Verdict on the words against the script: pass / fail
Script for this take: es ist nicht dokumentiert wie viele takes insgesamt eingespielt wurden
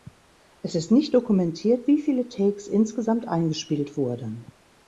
pass